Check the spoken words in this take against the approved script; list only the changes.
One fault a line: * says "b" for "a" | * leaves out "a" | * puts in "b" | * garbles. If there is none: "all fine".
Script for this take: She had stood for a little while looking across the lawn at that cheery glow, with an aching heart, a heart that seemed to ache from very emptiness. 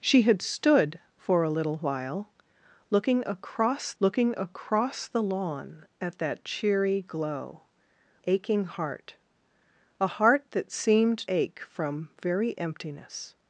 * puts in "looking across"
* leaves out "with an"
* leaves out "to"